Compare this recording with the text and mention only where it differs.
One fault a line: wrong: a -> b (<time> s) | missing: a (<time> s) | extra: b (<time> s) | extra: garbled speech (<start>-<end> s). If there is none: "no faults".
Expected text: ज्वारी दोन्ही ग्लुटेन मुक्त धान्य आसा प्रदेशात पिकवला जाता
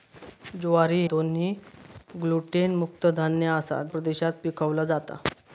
no faults